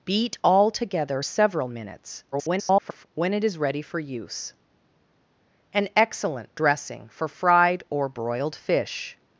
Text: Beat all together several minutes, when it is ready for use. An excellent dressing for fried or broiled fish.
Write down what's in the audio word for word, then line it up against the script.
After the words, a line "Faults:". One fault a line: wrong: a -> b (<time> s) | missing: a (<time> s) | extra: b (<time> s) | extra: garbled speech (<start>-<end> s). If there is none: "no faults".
Beat all together several minutes, [garbled] when it is ready for use. An excellent dressing for fried or broiled fish.
Faults:
extra: garbled speech (2.3-3.1 s)